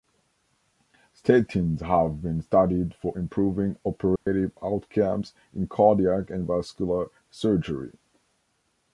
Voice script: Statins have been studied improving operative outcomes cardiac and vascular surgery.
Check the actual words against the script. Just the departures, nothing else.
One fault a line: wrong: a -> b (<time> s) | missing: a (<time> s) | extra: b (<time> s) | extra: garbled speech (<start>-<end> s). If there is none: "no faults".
extra: for (2.9 s)
extra: in (5.5 s)